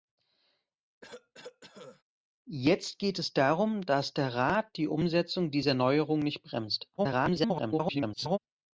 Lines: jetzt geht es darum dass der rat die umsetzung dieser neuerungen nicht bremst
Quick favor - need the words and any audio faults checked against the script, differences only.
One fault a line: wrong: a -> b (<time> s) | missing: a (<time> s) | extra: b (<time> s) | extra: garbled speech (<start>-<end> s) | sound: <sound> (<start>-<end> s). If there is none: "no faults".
sound: cough (1.0-2.0 s)
extra: garbled speech (7.0-8.4 s)